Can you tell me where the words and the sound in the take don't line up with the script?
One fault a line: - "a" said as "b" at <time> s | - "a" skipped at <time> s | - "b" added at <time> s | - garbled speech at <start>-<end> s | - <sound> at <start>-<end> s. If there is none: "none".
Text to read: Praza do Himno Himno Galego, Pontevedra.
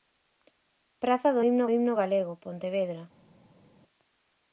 none